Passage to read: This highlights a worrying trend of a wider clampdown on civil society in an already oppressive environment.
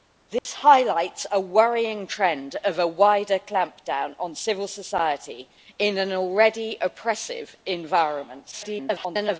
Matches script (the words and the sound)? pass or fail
fail